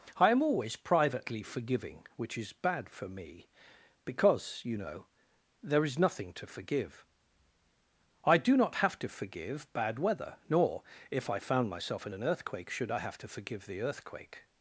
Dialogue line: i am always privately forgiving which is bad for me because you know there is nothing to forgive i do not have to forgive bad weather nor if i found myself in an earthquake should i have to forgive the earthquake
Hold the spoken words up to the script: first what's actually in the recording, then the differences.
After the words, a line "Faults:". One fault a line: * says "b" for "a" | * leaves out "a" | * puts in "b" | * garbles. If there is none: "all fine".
i am always privately forgiving which is bad for me because you know there is nothing to forgive i do not have to forgive bad weather nor if i found myself in an earthquake should i have to forgive the earthquake
Faults:
all fine